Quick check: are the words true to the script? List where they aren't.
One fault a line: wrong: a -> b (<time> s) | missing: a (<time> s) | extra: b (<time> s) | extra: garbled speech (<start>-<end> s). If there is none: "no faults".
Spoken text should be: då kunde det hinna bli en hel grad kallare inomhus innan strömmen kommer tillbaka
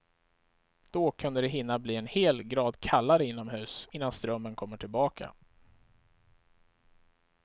no faults